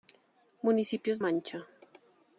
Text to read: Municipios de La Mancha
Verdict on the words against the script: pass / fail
fail